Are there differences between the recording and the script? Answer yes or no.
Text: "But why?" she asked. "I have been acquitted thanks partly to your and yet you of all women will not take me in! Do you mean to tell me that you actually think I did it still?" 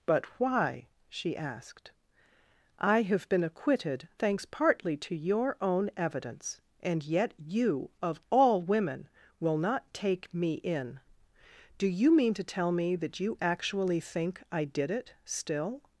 yes